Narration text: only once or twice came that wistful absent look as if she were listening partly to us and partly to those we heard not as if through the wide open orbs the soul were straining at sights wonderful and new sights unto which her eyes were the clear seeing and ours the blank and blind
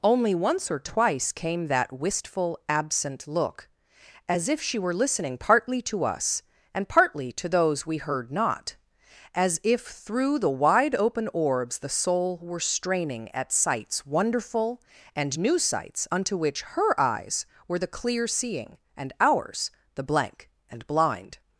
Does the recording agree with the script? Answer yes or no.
yes